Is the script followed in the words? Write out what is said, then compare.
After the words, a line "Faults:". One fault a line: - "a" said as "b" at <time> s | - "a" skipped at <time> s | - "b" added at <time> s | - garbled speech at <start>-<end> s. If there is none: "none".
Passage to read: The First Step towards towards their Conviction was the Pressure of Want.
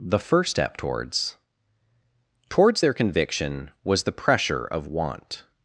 The First Step towards towards their Conviction was the Pressure of Want.
Faults:
none